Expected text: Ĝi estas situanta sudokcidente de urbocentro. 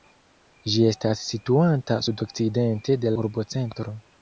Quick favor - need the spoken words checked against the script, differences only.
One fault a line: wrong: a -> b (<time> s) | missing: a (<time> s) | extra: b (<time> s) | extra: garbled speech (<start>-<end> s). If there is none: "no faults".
no faults